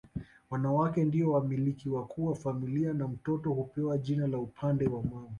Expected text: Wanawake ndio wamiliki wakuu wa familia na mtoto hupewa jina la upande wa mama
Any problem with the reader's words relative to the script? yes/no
no